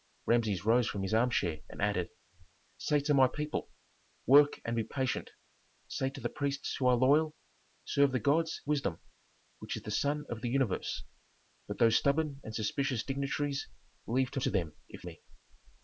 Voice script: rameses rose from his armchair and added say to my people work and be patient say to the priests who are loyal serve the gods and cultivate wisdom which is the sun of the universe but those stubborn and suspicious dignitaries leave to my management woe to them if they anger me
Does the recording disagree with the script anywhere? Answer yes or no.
yes